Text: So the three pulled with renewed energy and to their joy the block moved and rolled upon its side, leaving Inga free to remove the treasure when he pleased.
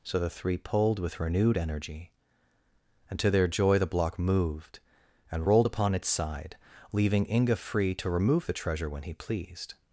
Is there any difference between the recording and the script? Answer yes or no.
no